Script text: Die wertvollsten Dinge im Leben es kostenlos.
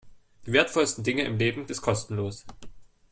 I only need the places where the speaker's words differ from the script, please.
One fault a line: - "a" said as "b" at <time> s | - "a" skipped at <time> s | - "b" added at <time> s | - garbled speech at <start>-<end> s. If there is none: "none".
none